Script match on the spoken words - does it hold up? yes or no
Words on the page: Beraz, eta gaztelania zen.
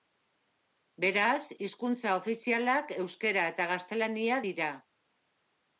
no